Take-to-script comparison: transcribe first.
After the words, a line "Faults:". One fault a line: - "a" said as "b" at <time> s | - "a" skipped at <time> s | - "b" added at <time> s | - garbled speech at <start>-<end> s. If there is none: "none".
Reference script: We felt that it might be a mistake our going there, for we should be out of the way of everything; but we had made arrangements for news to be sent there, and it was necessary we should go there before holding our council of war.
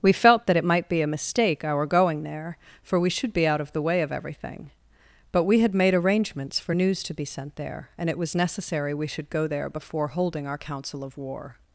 We felt that it might be a mistake our going there, for we should be out of the way of everything; but we had made arrangements for news to be sent there, and it was necessary we should go there before holding our council of war.
Faults:
none